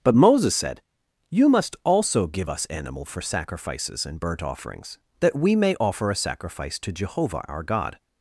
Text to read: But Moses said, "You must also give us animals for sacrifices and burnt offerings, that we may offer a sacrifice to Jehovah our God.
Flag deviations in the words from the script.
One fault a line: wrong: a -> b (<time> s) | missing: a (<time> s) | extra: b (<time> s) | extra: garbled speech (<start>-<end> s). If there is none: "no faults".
wrong: animals -> animal (2.7 s)